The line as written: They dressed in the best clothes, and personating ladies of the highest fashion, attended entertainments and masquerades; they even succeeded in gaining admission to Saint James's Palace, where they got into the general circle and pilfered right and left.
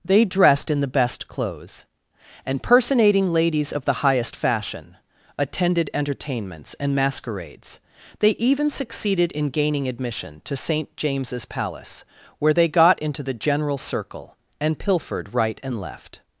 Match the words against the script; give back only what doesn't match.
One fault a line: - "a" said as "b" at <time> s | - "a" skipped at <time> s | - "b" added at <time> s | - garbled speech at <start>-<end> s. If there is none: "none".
none